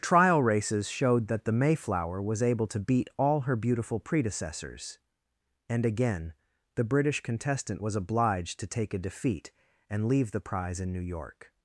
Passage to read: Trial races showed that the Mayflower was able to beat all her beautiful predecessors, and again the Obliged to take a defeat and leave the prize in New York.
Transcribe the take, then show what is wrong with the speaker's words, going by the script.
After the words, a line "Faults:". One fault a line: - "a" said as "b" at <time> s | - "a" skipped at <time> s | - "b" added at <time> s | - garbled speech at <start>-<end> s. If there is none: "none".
Trial races showed that the Mayflower was able to beat all her beautiful predecessors, and again the British contestant was obliged to take a defeat and leave the prize in New York.
Faults:
- "British contestant was" added at 6.8 s